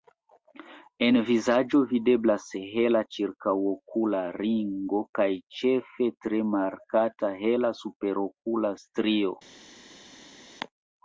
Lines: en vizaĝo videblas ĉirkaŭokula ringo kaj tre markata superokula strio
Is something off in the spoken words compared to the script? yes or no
yes